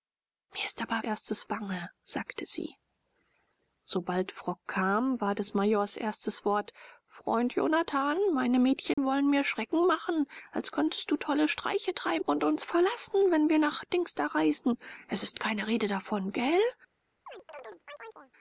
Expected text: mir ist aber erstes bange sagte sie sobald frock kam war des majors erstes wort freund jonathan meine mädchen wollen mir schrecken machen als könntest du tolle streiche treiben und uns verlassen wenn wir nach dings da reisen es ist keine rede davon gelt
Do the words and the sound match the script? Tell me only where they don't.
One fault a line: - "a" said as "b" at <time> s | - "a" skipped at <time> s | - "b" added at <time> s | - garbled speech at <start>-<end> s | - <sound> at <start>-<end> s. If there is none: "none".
- dropout at 8.9-9.0 s
- chirp at 17.3-18.3 s